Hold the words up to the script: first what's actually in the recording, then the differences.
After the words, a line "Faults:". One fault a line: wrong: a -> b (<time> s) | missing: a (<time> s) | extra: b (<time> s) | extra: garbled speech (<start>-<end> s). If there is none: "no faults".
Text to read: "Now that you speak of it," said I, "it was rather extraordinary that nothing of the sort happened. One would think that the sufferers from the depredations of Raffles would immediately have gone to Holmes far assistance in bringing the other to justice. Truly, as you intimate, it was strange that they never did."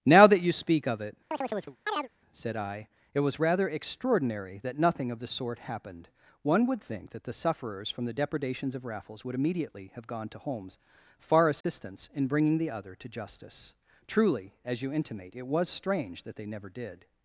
"Now that you speak of it," said I, "it was rather extraordinary that nothing of the sort happened. One would think that the sufferers from the depredations of Raffles would immediately have gone to Holmes far assistance in bringing the other to justice. Truly, as you intimate, it was strange that they never did."
Faults:
no faults